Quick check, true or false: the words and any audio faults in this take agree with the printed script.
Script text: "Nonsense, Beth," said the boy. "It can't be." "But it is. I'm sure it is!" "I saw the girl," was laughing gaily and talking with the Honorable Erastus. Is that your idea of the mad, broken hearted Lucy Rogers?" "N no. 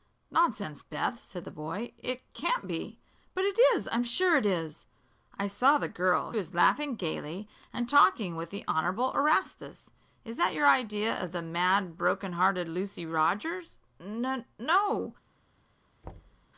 false